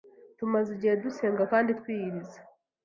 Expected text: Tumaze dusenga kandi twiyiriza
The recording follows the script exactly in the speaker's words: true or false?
false